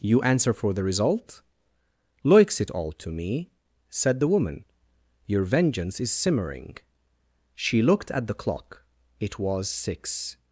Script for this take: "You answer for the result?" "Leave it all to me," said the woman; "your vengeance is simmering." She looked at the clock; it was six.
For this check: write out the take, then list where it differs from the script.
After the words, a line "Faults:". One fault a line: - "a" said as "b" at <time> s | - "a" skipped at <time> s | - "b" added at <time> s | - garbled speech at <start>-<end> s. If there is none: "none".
"You answer for the result?" "Loiks it all to me," said the woman; "your vengeance is simmering." She looked at the clock; it was six.
Faults:
- "Leave" said as "Loiks" at 2.2 s